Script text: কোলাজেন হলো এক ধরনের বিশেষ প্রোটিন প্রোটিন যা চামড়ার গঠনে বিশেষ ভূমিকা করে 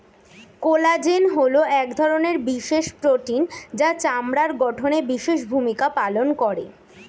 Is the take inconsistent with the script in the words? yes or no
yes